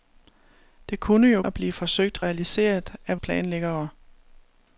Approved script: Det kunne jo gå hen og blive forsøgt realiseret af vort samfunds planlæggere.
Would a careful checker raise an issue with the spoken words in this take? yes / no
yes